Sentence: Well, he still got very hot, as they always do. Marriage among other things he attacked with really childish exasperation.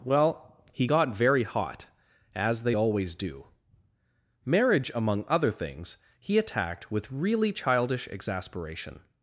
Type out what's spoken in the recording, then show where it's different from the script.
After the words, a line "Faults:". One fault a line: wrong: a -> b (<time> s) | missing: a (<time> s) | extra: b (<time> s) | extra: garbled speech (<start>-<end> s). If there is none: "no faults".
Well, he got very hot, as they always do. Marriage among other things he attacked with really childish exasperation.
Faults:
missing: still (0.9 s)